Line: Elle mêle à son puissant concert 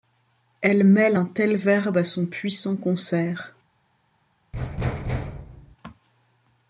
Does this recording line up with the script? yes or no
no